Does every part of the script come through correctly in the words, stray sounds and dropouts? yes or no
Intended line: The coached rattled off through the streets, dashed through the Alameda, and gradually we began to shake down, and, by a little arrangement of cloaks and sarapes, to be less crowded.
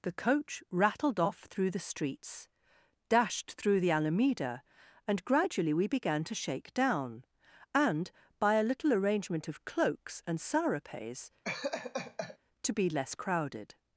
no